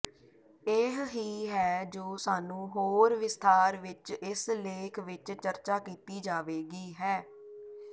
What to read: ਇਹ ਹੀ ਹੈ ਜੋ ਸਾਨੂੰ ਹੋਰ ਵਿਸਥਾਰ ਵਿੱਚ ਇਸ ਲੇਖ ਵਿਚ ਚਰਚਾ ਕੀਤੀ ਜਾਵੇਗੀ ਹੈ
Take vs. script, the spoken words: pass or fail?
pass